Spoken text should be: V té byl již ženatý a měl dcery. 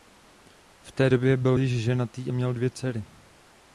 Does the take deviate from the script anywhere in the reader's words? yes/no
yes